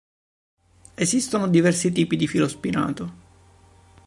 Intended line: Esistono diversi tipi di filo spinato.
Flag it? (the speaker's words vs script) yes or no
no